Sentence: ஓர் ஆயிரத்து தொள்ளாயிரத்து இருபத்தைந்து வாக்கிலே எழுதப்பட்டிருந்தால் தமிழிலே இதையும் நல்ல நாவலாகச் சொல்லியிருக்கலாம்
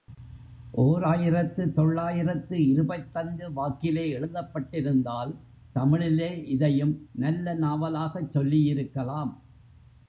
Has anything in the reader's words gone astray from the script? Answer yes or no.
no